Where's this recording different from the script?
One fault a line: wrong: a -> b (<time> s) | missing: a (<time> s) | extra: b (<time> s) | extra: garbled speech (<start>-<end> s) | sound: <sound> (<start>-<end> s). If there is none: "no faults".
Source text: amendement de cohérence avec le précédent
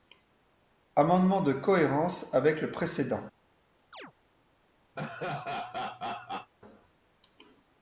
sound: chirp (3.9-4.1 s)
sound: laugh (5.0-6.5 s)